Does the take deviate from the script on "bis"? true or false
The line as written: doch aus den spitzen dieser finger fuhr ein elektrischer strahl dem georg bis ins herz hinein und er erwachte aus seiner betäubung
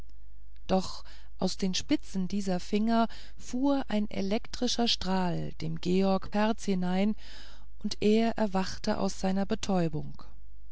true